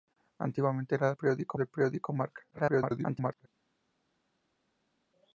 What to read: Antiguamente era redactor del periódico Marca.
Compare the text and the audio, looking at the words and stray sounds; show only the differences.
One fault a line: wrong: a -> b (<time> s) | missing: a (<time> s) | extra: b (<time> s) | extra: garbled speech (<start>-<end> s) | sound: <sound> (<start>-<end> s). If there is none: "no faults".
wrong: redactor -> periódico (1.1 s)
extra: garbled speech (2.5-3.5 s)